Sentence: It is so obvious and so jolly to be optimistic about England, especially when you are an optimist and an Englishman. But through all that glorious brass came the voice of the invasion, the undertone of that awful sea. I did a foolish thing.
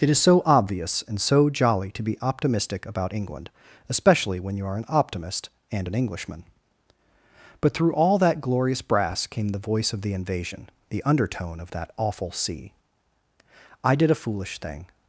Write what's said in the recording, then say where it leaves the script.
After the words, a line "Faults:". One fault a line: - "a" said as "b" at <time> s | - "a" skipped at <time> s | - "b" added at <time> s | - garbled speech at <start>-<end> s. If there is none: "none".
It is so obvious and so jolly to be optimistic about England, especially when you are an optimist and an Englishman. But through all that glorious brass came the voice of the invasion, the undertone of that awful sea. I did a foolish thing.
Faults:
none